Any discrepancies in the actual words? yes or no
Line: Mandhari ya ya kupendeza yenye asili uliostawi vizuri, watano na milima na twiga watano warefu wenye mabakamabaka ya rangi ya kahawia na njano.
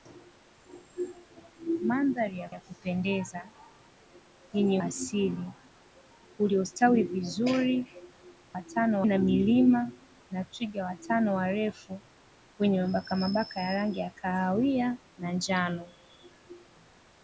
no